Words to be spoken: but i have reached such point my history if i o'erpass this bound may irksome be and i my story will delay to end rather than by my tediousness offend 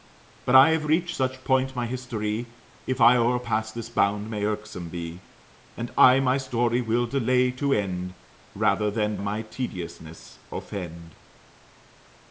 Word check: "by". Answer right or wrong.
wrong